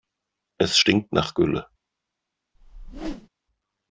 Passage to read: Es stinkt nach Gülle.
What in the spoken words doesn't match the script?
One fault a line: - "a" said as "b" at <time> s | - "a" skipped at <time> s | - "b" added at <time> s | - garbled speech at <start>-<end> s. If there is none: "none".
none